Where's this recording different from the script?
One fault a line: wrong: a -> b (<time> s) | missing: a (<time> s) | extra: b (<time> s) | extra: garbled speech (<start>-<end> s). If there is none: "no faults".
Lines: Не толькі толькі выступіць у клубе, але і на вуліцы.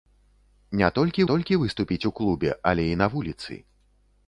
no faults